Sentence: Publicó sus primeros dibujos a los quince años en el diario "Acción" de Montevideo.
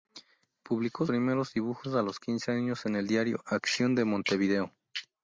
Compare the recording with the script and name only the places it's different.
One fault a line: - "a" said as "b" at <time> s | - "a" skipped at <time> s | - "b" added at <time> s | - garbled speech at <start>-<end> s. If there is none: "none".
- "sus" skipped at 1.1 s